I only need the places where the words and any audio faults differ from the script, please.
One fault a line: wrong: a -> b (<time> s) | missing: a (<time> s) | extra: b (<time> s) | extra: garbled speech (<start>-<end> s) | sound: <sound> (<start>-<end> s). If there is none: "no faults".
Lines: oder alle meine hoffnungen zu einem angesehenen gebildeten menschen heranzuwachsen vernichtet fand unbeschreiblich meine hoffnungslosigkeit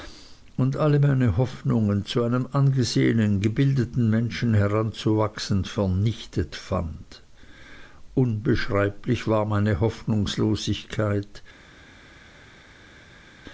wrong: oder -> und (0.6 s)
extra: war (9.3 s)